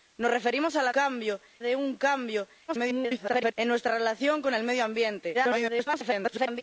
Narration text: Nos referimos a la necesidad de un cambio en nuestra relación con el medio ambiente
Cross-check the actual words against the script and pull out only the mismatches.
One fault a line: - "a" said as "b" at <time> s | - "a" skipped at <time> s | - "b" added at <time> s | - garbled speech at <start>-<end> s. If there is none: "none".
- "necesidad" said as "cambio" at 0.9 s
- garbled speech at 2.7-3.5 s
- garbled speech at 5.3-6.6 s